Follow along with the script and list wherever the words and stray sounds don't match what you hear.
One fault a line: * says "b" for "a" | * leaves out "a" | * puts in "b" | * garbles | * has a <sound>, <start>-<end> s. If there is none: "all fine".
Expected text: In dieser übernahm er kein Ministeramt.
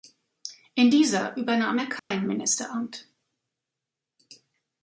* has a dropout, 2.0-2.1 s